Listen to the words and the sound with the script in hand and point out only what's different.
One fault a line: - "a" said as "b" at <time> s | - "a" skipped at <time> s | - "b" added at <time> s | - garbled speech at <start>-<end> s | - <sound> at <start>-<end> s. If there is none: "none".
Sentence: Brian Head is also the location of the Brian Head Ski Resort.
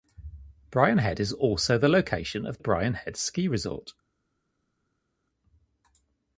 - "the" skipped at 2.6 s